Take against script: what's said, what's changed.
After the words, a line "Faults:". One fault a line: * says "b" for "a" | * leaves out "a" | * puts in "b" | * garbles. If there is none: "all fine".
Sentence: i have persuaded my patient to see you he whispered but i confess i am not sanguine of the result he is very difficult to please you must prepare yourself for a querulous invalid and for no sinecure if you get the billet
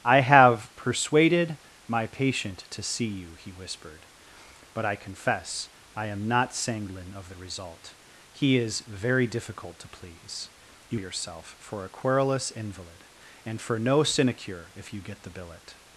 i have persuaded my patient to see you he whispered but i confess i am not sanguine of the result he is very difficult to please you yourself for a querulous invalid and for no sinecure if you get the billet
Faults:
* leaves out "must prepare"